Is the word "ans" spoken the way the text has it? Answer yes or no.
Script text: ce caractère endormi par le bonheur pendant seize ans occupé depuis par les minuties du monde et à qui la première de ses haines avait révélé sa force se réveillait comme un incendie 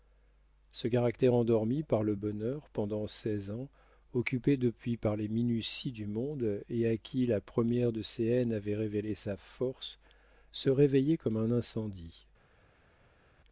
yes